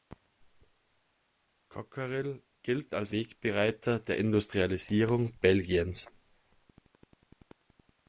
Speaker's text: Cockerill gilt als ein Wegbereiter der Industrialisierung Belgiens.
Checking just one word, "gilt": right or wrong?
right